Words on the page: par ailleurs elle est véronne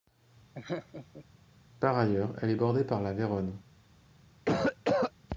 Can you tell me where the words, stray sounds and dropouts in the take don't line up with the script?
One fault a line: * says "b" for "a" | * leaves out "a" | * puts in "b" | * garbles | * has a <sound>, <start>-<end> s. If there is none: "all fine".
* has a laugh, 0.5-1.3 s
* puts in "bordée par la"
* has a cough, 4.5-5.1 s